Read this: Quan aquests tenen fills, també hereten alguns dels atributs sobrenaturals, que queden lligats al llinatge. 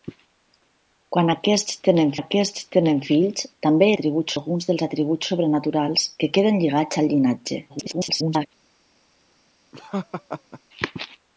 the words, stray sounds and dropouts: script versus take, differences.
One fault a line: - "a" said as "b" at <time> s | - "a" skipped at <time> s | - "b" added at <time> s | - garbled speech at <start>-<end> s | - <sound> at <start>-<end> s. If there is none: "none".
- "aquests tenen" added at 2.2 s
- "hereten" said as "atributs" at 3.9 s
- garbled speech at 7.7-8.5 s
- laugh at 9.7-10.6 s